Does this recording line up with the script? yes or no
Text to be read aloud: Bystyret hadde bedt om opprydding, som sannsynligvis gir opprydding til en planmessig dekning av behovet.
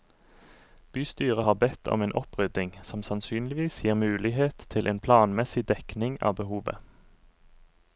no